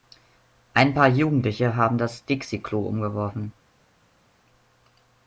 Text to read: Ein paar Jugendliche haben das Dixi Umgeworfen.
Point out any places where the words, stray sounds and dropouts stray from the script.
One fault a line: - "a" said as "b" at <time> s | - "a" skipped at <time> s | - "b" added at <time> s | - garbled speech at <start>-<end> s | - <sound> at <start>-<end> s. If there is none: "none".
- "Klo" added at 2.6 s